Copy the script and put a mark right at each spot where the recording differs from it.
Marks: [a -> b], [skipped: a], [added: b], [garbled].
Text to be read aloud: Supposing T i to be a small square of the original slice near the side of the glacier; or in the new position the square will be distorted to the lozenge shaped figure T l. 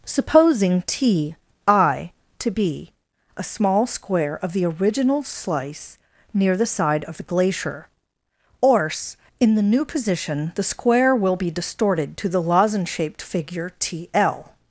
Supposing T i to be a small square of the original slice near the side of the glacier; or in the new position the square will be distorted to the lozenge shaped figure T l.